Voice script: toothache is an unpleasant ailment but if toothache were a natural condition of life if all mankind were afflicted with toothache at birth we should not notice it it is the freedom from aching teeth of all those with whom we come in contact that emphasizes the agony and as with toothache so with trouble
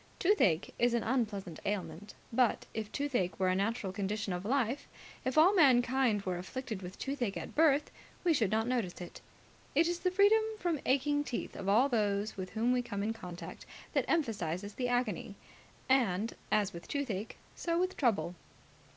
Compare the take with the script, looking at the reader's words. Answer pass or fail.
pass